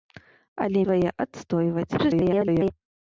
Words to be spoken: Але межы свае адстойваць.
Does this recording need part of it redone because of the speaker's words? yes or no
yes